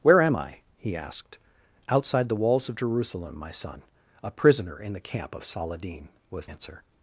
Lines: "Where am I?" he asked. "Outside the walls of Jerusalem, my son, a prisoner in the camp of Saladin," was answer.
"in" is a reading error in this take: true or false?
false